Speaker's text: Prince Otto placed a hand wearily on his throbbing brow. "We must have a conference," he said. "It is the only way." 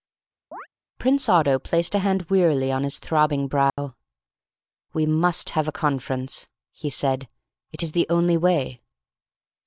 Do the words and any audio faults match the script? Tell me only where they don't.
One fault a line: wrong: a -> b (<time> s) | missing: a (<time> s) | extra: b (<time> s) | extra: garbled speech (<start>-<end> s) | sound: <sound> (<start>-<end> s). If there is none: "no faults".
sound: chirp (0.5-0.7 s)
sound: dropout (3.7-3.8 s)